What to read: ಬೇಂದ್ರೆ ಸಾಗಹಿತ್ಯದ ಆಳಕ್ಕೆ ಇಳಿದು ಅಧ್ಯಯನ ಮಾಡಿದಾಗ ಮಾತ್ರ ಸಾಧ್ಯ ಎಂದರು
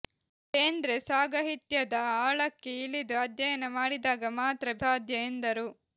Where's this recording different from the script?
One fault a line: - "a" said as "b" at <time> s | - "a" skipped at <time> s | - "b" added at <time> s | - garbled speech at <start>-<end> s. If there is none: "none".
none